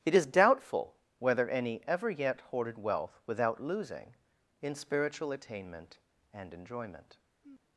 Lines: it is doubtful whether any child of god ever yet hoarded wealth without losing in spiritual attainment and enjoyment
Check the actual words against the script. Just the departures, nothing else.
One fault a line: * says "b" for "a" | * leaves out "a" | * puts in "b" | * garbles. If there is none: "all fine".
* leaves out "child of god"